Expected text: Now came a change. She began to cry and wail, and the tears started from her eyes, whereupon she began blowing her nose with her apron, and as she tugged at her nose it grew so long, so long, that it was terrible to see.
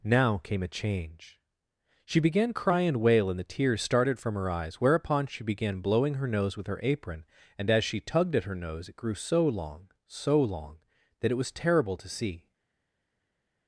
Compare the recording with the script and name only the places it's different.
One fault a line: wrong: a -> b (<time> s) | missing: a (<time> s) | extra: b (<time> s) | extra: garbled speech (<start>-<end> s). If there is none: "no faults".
missing: to (2.5 s)